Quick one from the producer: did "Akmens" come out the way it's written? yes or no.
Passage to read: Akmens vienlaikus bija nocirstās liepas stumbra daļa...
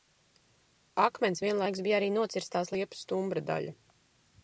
yes